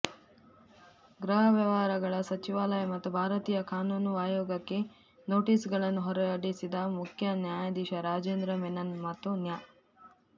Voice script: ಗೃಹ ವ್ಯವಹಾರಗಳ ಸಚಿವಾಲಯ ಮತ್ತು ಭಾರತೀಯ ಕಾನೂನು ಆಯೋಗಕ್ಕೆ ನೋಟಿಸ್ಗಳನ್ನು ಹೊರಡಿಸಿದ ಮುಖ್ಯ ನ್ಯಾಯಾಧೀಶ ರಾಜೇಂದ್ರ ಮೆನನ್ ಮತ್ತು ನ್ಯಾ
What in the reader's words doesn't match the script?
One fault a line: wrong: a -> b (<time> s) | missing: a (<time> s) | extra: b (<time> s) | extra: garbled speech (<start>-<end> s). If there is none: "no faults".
no faults